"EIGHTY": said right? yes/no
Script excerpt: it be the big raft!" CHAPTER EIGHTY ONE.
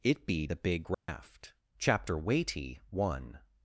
no